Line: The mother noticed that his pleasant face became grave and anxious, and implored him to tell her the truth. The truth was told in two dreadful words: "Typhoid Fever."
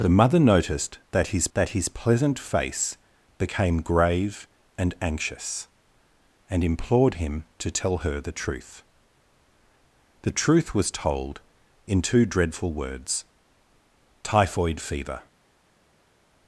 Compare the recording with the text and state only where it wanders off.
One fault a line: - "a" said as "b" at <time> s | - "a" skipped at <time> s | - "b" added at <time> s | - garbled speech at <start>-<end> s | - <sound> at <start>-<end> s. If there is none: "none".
- "that his" added at 1.5 s